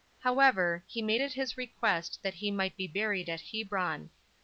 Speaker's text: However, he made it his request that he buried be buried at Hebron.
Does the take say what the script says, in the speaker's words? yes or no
no